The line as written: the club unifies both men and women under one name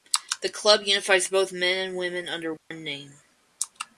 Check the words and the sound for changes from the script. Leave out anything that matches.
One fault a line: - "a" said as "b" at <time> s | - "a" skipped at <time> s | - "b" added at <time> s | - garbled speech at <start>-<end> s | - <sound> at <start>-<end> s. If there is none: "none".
- dropout at 2.6-2.7 s